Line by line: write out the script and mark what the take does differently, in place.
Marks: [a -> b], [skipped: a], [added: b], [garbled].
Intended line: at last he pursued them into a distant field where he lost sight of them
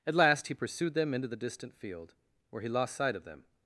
at last he pursued them into [a -> the] distant field where he lost sight of them